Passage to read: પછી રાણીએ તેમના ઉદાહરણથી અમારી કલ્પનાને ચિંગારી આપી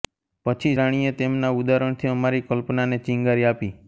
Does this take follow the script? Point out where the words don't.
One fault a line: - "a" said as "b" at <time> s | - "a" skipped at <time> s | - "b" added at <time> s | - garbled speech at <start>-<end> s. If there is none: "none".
none